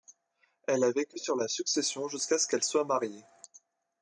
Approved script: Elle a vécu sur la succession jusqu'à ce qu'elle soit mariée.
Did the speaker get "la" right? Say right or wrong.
right